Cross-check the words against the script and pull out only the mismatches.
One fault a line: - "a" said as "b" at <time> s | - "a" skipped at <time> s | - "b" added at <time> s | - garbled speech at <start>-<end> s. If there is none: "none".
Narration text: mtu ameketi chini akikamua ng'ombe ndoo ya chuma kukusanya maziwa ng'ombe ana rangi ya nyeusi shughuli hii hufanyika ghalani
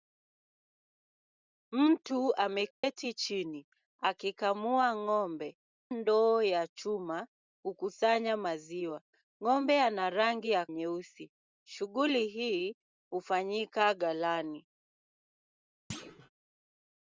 none